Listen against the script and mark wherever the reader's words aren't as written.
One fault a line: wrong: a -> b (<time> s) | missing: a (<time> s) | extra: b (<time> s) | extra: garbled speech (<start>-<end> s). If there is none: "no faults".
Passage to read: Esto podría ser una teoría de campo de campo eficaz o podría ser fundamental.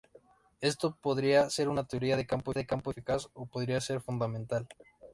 no faults